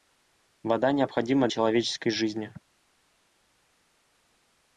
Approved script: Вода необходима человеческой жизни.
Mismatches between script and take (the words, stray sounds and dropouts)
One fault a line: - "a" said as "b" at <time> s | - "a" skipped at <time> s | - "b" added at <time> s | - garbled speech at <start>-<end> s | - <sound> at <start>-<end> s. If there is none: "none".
none